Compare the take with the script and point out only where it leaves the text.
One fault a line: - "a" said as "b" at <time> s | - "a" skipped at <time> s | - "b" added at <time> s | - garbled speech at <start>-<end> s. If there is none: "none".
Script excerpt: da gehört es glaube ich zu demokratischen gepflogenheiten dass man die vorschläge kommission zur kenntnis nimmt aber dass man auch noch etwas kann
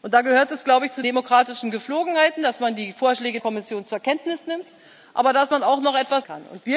none